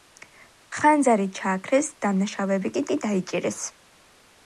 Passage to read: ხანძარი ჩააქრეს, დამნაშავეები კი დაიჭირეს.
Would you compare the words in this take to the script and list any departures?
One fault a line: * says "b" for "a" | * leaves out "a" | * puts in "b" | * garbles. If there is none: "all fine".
* puts in "კი"